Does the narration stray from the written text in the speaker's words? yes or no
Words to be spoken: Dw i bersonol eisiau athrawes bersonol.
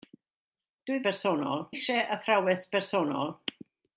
no